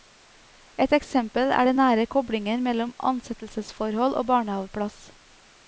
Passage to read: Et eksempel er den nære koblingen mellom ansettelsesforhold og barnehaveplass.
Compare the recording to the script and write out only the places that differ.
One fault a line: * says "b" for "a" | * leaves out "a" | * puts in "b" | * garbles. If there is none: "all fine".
all fine